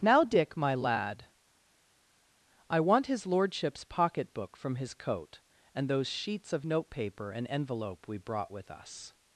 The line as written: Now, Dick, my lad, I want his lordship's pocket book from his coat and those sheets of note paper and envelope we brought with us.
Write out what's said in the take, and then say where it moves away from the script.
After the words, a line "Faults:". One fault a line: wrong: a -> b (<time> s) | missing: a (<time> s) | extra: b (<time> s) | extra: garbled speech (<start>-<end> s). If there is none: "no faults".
Now, Dick, my lad, I want his lordship's pocket book from his coat and those sheets of note paper and envelope we brought with us.
Faults:
no faults